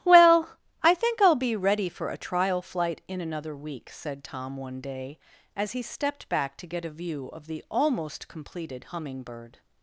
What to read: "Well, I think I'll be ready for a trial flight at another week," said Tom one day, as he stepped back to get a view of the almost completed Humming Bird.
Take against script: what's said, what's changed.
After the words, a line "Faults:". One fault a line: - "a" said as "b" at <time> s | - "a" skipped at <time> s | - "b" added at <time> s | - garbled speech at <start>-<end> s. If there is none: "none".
"Well, I think I'll be ready for a trial flight in another week," said Tom one day, as he stepped back to get a view of the almost completed Humming Bird.
Faults:
- "at" said as "in" at 3.1 s